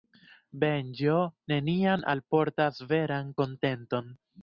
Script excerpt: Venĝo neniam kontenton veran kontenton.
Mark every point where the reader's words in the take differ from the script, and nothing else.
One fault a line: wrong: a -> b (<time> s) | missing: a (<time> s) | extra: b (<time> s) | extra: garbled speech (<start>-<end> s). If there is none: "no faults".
wrong: kontenton -> alportas (2.1 s)